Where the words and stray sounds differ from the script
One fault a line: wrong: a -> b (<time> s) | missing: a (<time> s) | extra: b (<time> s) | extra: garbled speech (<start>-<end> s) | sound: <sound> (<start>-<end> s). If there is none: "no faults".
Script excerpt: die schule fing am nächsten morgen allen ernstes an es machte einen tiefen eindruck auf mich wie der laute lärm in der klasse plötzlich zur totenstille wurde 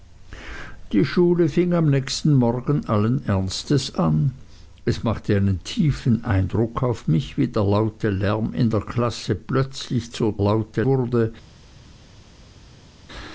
wrong: totenstille -> laute (10.4 s)